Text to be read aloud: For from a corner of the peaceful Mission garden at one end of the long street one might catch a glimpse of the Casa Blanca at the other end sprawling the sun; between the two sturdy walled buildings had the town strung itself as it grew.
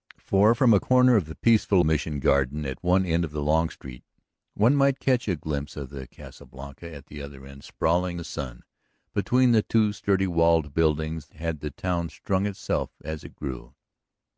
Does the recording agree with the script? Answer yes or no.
yes